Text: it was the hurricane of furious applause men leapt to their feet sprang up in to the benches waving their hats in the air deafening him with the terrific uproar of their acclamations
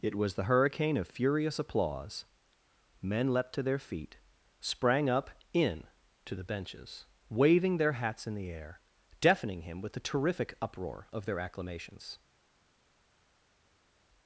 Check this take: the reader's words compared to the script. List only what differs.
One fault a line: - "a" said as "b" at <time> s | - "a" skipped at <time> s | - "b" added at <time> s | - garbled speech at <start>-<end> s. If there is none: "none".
none